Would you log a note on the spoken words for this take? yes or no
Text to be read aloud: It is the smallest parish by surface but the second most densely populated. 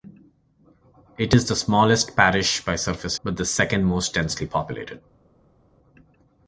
no